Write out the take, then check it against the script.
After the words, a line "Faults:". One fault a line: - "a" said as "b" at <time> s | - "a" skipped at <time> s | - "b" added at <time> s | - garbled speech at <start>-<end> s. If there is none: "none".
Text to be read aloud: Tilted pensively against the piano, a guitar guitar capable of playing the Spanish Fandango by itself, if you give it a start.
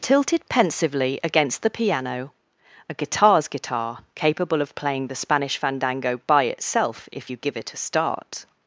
Tilted pensively against the piano, a guitars guitar capable of playing the Spanish Fandango by itself, if you give it a start.
Faults:
- "guitar" said as "guitars" at 2.9 s